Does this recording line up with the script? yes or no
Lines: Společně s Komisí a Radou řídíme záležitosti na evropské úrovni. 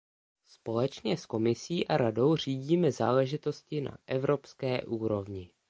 yes